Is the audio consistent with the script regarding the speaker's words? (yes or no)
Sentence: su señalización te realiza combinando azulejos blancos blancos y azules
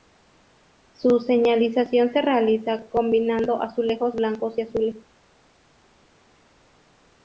no